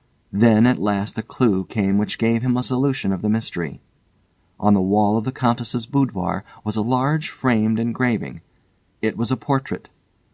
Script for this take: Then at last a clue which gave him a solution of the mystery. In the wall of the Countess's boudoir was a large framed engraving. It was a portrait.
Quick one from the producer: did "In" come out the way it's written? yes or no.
no